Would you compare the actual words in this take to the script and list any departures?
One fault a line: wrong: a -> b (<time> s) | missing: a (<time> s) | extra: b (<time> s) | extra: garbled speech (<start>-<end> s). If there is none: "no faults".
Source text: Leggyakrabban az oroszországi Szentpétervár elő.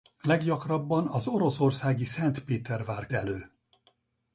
no faults